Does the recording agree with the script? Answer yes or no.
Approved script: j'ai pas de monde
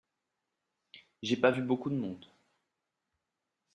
no